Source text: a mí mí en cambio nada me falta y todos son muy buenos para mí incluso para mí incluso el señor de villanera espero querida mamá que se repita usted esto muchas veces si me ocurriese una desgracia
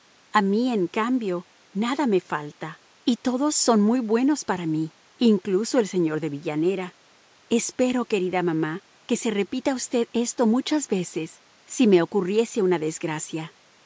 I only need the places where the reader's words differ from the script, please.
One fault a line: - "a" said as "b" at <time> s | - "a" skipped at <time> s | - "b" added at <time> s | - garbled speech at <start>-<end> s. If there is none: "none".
- "mí" skipped at 0.7 s
- "para mí incluso" skipped at 5.8 s